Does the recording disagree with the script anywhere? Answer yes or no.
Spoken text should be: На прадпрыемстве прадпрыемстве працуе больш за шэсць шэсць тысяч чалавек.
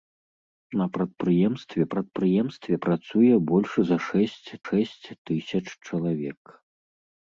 no